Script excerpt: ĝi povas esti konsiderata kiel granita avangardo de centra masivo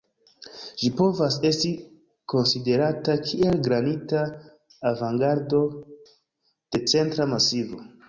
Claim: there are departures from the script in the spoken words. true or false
false